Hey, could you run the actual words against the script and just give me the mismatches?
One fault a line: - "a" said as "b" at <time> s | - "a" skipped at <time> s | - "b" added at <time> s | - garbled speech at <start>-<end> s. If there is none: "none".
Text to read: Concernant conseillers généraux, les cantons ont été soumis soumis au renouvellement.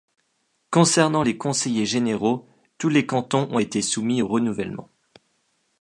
- "les" added at 1.2 s
- "tous" added at 2.8 s
- "soumis" skipped at 4.2 s